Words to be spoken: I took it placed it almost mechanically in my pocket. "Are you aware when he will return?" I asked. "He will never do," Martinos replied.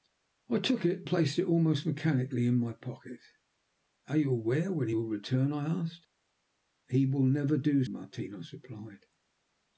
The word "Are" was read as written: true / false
true